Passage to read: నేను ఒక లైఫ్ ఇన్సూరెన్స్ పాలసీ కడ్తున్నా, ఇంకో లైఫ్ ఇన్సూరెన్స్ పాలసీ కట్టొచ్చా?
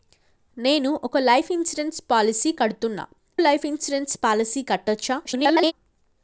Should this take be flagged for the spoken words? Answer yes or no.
yes